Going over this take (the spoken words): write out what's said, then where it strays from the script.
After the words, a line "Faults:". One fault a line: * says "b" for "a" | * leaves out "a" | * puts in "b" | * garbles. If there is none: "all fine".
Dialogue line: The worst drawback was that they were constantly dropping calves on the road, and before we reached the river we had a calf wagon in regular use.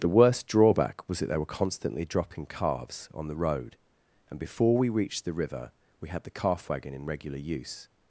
The worst drawback was that they were constantly dropping calves on the road, and before we reached the river we had the calf wagon in regular use.
Faults:
* says "the" for "a"